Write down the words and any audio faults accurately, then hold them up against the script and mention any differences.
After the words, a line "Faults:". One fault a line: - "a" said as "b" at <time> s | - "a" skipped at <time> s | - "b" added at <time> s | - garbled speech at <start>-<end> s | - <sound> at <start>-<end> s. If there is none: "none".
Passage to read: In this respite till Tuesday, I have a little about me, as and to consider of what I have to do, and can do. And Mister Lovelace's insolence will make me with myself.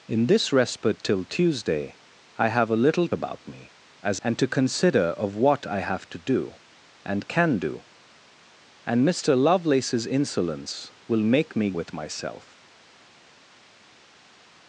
In this respite till Tuesday, I have a little about me, as and to consider of what I have to do, and can do. And Mister Lovelace's insolence will make me with myself.
Faults:
none